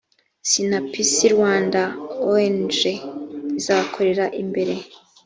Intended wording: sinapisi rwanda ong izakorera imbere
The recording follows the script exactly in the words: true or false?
true